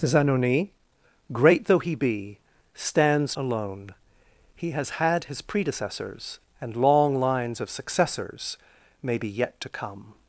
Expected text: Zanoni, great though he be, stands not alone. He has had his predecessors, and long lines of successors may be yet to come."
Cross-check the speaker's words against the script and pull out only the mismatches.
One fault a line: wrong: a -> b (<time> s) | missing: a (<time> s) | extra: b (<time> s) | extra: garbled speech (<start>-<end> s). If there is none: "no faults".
missing: not (3.4 s)